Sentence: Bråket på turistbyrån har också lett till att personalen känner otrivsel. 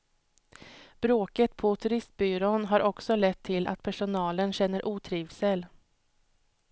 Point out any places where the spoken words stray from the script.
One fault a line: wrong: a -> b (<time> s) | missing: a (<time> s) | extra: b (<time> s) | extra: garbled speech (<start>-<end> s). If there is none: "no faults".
no faults